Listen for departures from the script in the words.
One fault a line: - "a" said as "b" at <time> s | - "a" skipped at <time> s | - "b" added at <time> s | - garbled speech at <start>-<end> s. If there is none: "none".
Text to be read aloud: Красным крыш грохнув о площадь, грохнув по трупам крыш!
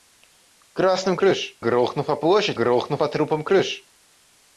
none